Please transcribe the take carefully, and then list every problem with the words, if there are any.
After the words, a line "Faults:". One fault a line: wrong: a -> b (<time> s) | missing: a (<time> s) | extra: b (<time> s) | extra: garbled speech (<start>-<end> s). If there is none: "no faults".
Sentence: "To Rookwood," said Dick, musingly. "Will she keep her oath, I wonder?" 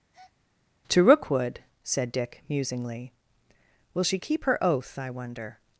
"To Rookwood," said Dick, musingly. "Will she keep her oath, I wonder?"
Faults:
no faults